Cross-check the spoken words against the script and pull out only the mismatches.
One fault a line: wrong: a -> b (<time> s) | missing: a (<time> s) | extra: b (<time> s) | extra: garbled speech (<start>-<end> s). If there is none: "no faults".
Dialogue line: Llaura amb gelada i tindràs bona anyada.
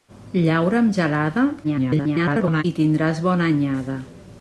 extra: garbled speech (1.6-2.6 s)